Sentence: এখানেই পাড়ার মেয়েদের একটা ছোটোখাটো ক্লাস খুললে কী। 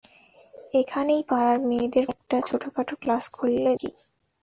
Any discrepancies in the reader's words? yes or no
no